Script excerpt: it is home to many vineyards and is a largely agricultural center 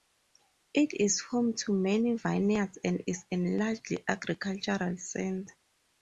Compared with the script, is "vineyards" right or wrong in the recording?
right